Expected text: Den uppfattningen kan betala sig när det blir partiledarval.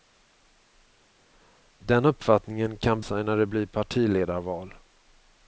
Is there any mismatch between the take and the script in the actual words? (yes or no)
yes